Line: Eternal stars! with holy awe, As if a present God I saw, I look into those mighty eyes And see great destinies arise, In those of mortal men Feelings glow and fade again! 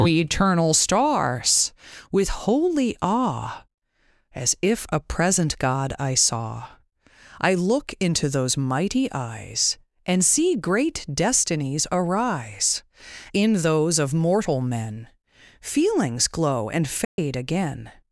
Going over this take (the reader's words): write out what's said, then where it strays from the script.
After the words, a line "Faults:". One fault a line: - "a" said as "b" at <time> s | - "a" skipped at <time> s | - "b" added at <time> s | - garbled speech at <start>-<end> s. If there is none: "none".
Eternal stars! with holy awe, As if a present God I saw, I look into those mighty eyes And see great destinies arise, In those of mortal men Feelings glow and fade again!
Faults:
none